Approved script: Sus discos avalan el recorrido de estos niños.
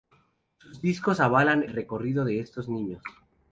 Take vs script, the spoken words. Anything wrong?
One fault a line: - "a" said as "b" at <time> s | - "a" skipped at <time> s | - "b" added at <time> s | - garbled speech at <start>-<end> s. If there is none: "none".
- "el" skipped at 1.6 s